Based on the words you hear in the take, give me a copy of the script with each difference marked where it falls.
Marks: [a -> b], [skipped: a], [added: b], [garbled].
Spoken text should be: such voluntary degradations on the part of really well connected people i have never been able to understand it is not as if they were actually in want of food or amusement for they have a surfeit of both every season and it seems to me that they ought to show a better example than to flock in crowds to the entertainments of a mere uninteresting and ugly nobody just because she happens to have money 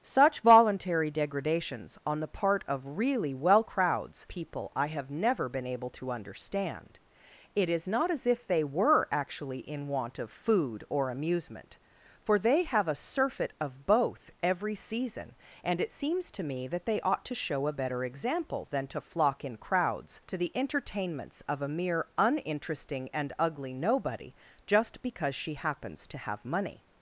such voluntary degradations on the part of really well [connected -> crowds] people i have never been able to understand it is not as if they were actually in want of food or amusement for they have a surfeit of both every season and it seems to me that they ought to show a better example than to flock in crowds to the entertainments of a mere uninteresting and ugly nobody just because she happens to have money